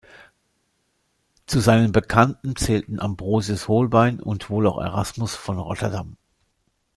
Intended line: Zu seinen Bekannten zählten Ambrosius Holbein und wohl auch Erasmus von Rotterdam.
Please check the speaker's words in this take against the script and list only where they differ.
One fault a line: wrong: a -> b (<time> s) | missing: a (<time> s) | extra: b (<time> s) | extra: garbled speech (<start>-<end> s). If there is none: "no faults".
no faults